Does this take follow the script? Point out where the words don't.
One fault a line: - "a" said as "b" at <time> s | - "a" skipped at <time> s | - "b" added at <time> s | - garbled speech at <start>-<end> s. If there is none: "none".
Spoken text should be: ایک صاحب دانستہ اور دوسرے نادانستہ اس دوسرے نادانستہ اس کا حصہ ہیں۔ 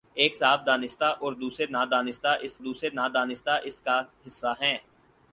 none